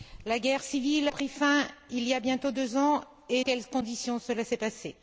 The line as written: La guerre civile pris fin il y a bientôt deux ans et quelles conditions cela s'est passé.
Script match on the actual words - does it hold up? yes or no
yes